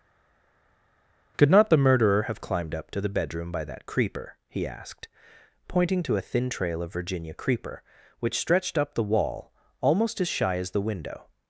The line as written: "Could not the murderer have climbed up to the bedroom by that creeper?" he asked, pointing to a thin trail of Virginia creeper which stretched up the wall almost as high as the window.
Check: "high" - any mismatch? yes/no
yes